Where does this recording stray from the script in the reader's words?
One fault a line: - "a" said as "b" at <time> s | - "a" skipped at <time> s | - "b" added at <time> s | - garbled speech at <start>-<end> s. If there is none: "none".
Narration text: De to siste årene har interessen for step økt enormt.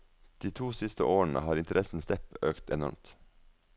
- "for" skipped at 2.0 s